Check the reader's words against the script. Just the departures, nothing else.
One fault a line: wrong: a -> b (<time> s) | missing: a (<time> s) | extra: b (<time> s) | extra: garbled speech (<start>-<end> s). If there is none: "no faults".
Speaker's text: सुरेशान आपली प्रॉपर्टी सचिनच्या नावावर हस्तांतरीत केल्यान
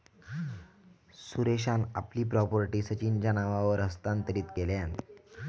no faults